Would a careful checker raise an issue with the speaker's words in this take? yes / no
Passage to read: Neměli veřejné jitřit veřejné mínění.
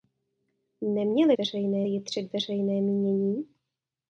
no